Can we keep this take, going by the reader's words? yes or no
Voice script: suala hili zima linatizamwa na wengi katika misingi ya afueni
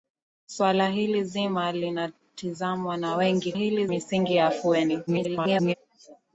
no